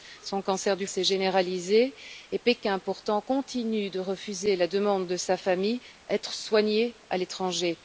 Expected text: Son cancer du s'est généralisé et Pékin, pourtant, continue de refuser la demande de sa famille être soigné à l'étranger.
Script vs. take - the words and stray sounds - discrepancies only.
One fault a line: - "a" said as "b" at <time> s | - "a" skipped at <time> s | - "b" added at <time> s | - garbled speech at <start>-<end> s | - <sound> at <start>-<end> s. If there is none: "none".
none